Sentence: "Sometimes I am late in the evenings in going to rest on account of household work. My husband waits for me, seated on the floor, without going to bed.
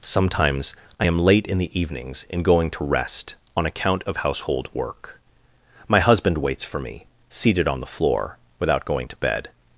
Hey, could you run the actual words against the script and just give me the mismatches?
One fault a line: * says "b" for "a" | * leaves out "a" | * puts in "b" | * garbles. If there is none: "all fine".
all fine